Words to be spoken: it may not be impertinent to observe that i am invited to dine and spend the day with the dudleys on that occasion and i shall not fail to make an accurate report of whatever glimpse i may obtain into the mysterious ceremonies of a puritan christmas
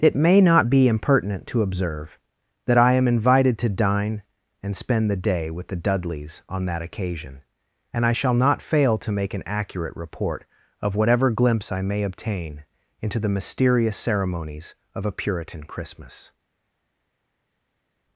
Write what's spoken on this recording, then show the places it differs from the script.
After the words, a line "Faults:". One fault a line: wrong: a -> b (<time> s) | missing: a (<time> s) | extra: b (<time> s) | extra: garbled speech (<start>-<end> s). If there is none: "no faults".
it may not be impertinent to observe that i am invited to dine and spend the day with the dudleys on that occasion and i shall not fail to make an accurate report of whatever glimpse i may obtain into the mysterious ceremonies of a puritan christmas
Faults:
no faults